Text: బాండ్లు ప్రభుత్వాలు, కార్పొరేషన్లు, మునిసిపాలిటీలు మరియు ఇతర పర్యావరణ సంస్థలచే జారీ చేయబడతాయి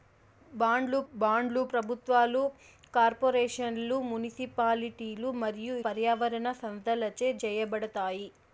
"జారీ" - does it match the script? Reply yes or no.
no